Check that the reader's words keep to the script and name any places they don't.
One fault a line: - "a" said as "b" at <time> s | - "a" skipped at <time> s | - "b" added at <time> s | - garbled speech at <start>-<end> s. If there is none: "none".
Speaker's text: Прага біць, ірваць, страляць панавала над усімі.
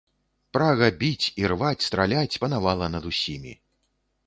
none